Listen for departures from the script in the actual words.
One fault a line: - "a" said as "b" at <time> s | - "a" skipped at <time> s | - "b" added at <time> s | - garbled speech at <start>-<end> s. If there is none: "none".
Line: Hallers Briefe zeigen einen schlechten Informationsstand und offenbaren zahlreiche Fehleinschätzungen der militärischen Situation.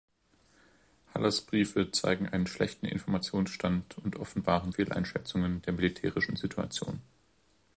- "zahlreiche" skipped at 4.7 s